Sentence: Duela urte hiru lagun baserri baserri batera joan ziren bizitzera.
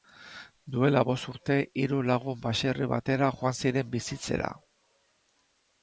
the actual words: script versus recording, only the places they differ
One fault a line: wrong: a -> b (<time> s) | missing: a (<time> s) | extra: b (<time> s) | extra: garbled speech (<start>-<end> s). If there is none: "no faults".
extra: bost (1.1 s)
missing: baserri (2.9 s)